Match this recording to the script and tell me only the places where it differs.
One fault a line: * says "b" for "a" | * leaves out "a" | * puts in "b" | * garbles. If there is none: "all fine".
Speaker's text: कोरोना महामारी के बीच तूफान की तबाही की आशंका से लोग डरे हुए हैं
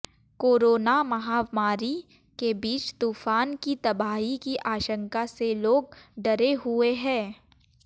all fine